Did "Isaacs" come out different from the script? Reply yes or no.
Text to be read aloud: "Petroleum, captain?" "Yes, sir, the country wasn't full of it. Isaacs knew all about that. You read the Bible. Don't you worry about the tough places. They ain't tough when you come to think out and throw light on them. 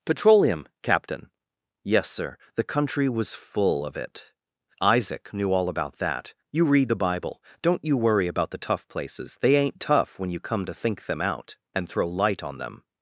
yes